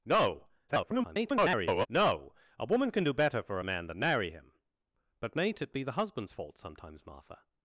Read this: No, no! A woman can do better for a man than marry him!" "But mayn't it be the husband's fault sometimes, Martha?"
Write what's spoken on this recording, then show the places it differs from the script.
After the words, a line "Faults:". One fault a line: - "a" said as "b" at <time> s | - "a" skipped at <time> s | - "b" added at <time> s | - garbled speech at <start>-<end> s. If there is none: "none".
No, [garbled] no! A woman can do better for a man than marry him!" "But mayn't it be the husband's fault sometimes, Martha?"
Faults:
- garbled speech at 0.7-1.9 s